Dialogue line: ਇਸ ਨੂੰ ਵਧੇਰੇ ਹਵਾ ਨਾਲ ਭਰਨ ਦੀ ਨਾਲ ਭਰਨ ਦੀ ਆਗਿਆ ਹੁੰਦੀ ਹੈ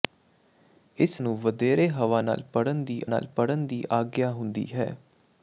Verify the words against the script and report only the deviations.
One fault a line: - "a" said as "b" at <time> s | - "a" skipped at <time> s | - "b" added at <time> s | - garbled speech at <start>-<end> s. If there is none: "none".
none